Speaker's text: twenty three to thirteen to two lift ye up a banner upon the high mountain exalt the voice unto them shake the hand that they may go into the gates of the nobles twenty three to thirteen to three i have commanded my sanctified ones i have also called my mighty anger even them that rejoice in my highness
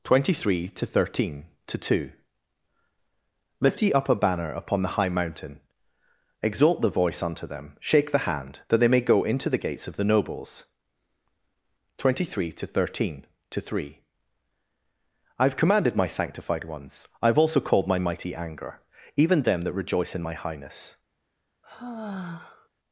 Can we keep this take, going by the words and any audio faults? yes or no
no